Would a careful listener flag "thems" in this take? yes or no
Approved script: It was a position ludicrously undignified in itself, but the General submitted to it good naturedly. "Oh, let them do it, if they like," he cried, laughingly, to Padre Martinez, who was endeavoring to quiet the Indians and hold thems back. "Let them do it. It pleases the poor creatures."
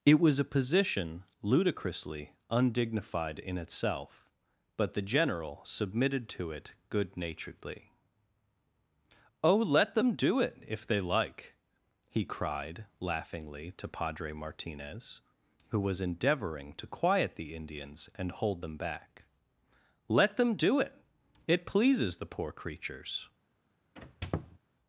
yes